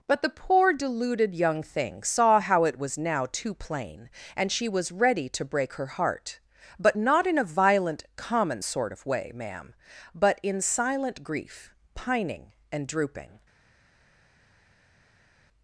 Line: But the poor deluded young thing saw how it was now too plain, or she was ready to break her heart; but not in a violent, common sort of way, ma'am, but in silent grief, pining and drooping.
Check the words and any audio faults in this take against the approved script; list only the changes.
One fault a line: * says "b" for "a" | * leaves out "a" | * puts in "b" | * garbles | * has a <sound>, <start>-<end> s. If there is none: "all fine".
* says "and" for "or"